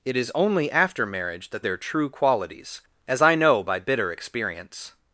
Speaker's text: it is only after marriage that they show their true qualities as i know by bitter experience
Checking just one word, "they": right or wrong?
wrong